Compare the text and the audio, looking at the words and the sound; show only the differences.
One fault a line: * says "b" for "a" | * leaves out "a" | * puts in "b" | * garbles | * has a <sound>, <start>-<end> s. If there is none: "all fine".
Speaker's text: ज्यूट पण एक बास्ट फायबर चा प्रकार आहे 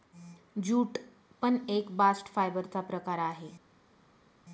all fine